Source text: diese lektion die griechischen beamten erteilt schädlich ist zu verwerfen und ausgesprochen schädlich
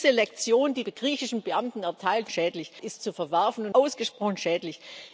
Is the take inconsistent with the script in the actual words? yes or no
no